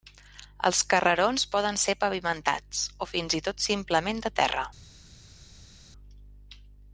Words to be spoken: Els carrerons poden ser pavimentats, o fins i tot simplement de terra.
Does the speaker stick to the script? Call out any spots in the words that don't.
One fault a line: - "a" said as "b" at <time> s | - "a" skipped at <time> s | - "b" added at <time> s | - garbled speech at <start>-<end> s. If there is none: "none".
none